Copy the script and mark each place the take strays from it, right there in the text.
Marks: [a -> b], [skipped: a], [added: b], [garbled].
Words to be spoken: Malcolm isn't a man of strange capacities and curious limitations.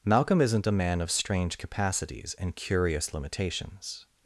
Malcolm isn't a man of strange capacities and curious limitations.